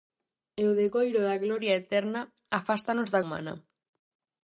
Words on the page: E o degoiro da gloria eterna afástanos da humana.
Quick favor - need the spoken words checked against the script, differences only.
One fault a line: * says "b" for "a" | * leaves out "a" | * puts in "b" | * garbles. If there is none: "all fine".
all fine